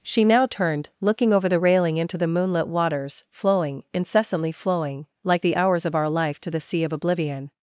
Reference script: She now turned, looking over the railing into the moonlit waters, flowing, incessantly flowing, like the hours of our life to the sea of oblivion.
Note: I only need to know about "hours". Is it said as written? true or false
true